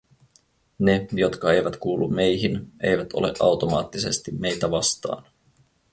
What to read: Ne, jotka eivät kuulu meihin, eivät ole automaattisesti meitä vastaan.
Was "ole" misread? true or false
false